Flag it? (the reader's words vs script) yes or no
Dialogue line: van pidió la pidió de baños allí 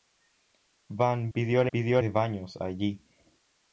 no